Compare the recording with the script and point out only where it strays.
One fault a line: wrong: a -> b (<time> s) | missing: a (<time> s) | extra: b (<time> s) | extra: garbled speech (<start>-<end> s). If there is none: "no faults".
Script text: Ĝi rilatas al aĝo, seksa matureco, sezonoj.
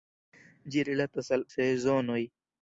missing: aĝo seksa matureco (1.4 s)